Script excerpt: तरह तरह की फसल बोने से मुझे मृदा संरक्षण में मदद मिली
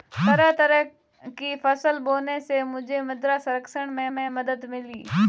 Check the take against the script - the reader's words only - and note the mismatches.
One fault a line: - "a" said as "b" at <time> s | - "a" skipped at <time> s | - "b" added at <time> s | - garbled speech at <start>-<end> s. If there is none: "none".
- "में" added at 4.1 s